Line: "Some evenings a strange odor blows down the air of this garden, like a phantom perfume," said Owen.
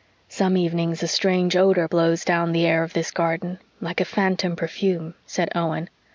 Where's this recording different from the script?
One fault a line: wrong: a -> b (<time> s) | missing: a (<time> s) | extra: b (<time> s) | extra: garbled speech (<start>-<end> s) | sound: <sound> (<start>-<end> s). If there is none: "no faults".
no faults